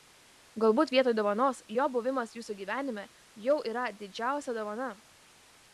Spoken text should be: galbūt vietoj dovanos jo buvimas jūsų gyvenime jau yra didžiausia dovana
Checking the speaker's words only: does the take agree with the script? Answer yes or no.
yes